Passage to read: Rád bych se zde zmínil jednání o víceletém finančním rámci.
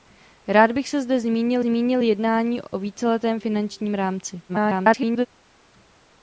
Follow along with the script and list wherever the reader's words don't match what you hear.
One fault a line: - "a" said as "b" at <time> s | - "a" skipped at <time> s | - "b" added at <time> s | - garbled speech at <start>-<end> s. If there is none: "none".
- "zmínil" added at 1.6 s
- garbled speech at 4.5-5.3 s